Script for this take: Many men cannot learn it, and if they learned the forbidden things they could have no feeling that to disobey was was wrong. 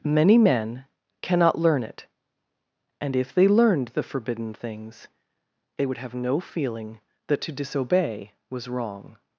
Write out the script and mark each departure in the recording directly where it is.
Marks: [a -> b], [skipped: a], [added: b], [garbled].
Many men cannot learn it, and if they learned the forbidden things they [could -> would] have no feeling that to disobey was [skipped: was] wrong.